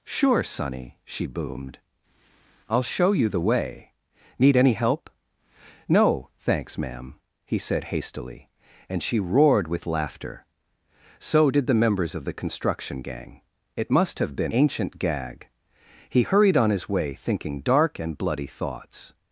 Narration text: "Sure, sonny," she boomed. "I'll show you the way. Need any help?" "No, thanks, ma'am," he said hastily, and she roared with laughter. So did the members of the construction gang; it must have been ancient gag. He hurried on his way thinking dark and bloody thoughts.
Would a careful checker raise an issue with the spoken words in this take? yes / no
no